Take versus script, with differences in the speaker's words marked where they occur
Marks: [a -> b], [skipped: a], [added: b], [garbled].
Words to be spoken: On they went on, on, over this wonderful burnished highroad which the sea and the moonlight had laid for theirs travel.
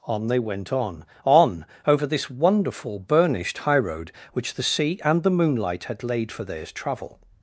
On they went on, on, over this wonderful burnished highroad which the sea and the moonlight had laid for theirs travel.